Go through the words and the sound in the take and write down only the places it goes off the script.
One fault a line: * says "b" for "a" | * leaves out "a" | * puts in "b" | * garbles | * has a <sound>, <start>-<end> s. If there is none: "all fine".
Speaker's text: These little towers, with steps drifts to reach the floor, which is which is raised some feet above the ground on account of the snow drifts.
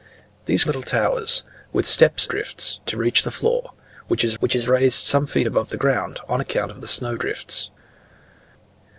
all fine